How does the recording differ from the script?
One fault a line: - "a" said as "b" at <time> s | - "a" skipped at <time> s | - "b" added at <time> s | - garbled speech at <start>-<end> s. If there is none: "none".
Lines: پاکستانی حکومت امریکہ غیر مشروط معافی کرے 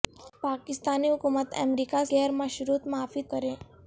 none